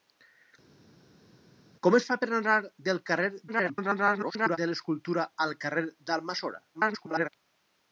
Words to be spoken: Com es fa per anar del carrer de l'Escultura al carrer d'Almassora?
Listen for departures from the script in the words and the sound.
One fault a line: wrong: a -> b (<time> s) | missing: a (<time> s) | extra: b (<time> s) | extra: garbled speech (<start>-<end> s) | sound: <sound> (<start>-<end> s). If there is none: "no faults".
extra: garbled speech (3.5-4.6 s)
extra: garbled speech (6.7-7.3 s)